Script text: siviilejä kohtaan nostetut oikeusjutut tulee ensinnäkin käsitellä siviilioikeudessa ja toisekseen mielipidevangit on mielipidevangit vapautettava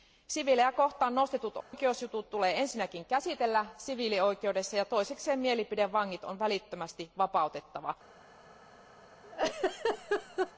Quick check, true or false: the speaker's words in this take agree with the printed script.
false